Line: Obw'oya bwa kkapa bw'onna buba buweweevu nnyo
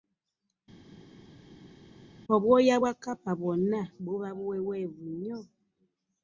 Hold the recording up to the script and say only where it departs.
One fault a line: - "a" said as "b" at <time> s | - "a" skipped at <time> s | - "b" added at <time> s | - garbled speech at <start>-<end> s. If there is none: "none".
none